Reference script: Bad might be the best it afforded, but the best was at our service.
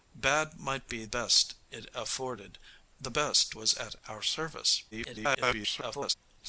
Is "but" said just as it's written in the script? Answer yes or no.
no